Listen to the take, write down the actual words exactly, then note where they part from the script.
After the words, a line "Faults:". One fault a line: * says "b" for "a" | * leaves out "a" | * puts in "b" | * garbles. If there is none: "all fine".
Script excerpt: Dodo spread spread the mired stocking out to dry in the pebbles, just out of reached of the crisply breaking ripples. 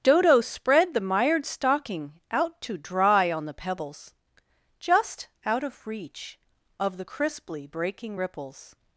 Dodo spread the mired stocking out to dry on the pebbles, just out of reach of the crisply breaking ripples.
Faults:
* leaves out "spread"
* says "on" for "in"
* says "reach" for "reached"